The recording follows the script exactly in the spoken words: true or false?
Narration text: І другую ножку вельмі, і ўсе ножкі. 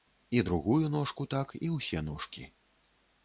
false